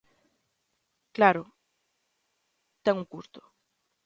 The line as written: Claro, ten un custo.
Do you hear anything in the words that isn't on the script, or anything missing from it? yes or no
no